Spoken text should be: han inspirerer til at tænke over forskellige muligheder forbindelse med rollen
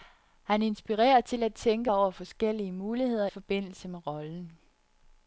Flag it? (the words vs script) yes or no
no